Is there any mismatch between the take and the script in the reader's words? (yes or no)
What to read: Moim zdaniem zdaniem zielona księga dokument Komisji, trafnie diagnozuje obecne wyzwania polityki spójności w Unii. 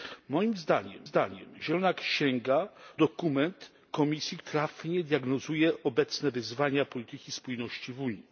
no